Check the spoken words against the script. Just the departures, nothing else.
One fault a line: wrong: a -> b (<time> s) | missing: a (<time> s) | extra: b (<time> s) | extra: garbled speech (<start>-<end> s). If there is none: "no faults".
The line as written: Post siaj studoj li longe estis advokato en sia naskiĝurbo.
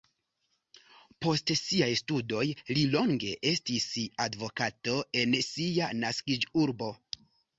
no faults